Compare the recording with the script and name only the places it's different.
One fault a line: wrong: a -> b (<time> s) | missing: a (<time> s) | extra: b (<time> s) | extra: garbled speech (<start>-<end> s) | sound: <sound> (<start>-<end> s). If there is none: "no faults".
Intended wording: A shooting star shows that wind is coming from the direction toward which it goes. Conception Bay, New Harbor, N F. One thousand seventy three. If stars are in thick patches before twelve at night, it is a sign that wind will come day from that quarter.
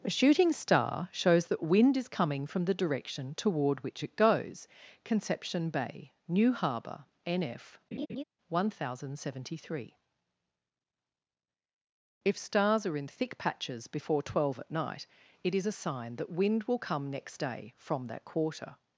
sound: laugh (7.9-8.2 s)
extra: next (17.1 s)